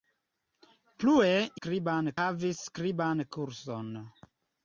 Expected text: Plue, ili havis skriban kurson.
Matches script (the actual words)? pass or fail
fail